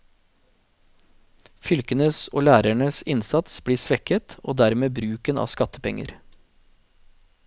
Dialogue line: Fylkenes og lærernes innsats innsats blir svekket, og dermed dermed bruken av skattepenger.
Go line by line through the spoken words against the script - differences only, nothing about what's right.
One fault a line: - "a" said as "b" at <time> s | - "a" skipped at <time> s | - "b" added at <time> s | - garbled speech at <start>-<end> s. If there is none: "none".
- "innsats" skipped at 3.6 s
- "dermed" skipped at 5.0 s